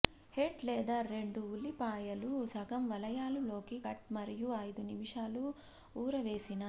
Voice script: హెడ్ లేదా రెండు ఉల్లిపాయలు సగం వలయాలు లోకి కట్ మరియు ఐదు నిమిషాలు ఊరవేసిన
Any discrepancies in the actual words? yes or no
no